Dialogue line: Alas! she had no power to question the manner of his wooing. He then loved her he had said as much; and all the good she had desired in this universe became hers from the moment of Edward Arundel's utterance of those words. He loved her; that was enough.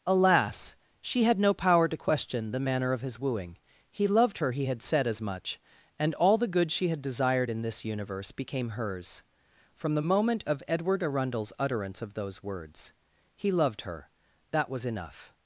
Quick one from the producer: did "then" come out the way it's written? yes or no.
no